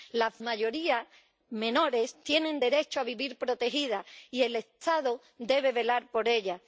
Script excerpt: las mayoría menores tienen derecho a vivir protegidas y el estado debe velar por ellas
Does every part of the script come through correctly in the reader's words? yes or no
yes